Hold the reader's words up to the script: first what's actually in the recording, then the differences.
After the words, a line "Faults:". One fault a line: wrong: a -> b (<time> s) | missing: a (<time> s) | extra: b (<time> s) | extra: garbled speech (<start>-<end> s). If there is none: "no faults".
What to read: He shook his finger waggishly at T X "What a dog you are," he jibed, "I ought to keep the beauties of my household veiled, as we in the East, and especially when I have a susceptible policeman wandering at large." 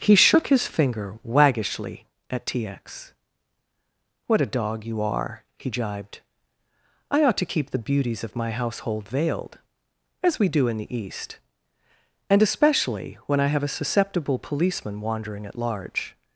He shook his finger waggishly at T X "What a dog you are," he jibed, "I ought to keep the beauties of my household veiled, as we do in the East, and especially when I have a susceptible policeman wandering at large."
Faults:
extra: do (10.5 s)